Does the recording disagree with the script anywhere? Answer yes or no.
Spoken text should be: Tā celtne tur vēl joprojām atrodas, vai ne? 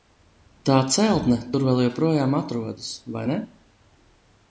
no